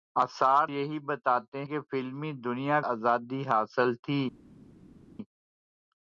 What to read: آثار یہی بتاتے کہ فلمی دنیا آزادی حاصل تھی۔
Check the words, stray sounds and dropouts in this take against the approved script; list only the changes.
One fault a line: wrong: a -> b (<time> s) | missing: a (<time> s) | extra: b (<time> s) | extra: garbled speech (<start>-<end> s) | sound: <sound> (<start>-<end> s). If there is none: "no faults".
no faults